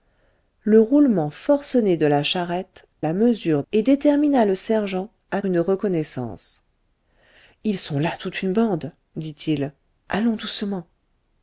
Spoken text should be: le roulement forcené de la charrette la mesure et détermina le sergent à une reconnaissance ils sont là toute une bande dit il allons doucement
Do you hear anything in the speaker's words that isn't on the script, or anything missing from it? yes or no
no